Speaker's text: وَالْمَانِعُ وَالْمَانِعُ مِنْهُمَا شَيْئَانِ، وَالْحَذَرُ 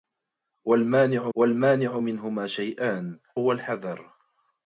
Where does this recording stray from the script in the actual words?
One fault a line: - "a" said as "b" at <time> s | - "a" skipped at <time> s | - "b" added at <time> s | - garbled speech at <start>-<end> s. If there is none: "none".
none